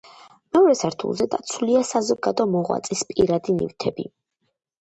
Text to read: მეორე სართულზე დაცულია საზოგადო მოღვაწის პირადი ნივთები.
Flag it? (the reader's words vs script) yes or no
no